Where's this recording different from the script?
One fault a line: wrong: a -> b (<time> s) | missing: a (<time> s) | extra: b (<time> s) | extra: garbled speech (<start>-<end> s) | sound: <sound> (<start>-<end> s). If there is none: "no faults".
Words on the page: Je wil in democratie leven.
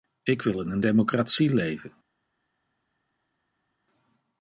wrong: Je -> Ik (0.2 s)
extra: een (0.7 s)